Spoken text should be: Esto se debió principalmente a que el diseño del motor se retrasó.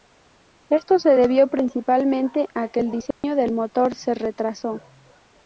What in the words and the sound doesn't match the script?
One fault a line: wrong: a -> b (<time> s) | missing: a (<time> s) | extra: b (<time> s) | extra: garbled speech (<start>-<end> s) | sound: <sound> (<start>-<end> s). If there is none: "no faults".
sound: dropout (3.1-3.2 s)